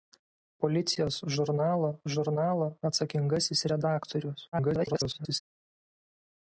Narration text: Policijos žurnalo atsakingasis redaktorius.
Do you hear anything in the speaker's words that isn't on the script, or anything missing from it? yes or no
yes